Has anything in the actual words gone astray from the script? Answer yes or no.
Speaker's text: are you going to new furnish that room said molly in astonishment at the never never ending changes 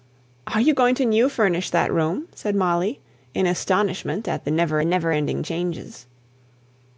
no